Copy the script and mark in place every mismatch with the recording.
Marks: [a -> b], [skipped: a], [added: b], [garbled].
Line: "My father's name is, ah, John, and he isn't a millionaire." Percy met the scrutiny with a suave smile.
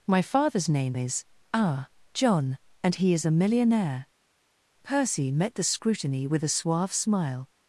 "My father's name is, ah, John, and he [isn't -> is] a millionaire." Percy met the scrutiny with a suave smile.